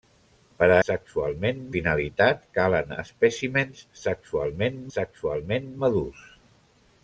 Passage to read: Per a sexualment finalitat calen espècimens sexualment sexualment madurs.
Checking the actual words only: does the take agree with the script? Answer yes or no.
yes